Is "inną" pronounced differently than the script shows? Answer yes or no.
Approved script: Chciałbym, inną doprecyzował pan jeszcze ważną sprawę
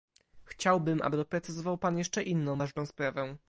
yes